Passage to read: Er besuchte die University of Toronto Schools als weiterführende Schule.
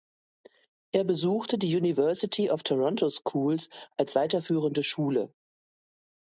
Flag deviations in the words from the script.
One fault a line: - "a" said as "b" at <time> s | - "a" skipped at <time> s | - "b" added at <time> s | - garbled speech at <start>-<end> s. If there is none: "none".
none